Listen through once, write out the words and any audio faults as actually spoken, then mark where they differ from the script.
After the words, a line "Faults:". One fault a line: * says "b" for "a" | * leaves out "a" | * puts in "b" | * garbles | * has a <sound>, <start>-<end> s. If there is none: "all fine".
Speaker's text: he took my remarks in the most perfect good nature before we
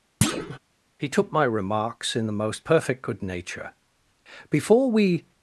he took my remarks in the most perfect good nature before we
Faults:
* has a thud, 0.2-0.6 s